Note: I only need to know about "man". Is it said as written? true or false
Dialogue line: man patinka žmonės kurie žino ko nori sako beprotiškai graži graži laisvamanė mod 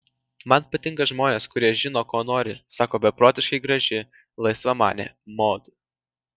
true